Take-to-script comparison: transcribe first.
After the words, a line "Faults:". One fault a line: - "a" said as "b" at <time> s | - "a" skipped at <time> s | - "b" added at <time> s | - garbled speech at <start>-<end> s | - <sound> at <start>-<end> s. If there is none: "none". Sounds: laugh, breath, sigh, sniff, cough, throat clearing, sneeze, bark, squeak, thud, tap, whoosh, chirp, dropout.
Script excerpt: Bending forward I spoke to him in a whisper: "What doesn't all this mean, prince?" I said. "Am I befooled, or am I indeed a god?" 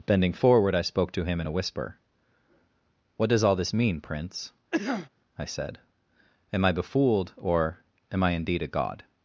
Bending forward I spoke to him in a whisper: "What does all this mean, prince?" I said. "Am I befooled, or am I indeed a god?"
Faults:
- "doesn't" said as "does" at 3.3 s
- cough at 4.7-5.1 s